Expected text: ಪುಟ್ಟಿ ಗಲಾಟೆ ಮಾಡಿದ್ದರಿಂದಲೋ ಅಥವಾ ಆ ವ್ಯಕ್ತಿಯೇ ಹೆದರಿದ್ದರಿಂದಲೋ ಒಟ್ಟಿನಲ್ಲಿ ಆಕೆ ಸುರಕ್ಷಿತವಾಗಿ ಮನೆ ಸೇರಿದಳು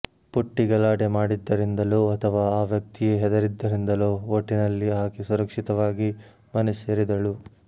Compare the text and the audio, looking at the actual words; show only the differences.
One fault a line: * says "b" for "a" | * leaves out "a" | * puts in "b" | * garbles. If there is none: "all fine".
all fine